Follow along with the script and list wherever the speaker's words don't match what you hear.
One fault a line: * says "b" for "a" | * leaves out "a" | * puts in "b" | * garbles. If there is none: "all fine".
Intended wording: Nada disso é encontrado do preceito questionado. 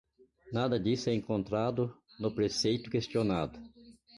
* says "no" for "do"